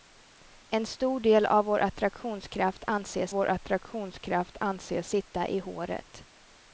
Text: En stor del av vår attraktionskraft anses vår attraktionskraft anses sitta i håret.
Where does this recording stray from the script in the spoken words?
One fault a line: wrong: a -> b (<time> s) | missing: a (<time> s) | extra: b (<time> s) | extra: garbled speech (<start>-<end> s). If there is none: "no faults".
no faults